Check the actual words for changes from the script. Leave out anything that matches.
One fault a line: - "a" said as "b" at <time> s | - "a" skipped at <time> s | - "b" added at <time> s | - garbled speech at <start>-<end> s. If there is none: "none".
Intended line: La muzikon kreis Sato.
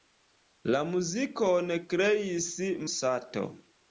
none